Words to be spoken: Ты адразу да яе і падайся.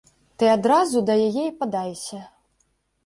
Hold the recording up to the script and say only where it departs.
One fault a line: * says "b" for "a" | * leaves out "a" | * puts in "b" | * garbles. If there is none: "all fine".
all fine